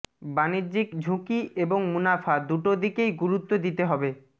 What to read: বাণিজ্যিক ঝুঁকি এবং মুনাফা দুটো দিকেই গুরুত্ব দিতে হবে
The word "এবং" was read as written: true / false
true